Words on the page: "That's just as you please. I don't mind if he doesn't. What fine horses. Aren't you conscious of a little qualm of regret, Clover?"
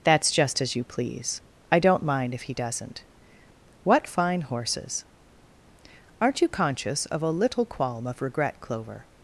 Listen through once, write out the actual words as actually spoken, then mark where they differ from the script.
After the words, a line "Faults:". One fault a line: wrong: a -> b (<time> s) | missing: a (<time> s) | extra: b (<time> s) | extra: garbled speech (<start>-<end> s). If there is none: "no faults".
"That's just as you please. I don't mind if he doesn't. What fine horses. Aren't you conscious of a little qualm of regret, Clover?"
Faults:
no faults